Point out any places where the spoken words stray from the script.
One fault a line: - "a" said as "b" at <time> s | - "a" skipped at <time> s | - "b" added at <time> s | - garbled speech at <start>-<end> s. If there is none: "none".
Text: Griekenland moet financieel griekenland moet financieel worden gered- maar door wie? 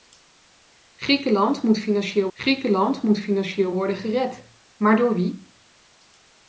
none